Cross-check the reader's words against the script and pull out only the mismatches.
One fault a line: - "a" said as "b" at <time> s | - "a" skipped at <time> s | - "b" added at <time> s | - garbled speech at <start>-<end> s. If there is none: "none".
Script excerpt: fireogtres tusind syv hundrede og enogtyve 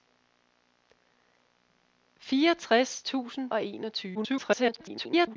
- "syv hundrede" skipped at 3.5 s
- garbled speech at 4.1-5.4 s